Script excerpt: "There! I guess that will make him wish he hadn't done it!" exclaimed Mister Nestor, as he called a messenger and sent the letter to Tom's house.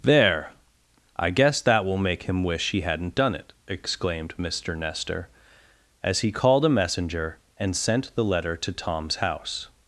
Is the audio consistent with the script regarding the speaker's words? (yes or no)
yes